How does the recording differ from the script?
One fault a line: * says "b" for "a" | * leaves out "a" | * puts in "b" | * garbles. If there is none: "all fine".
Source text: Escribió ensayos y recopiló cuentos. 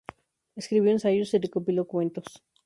all fine